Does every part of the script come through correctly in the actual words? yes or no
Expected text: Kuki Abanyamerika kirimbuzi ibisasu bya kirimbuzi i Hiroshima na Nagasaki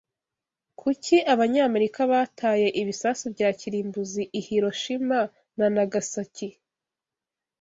no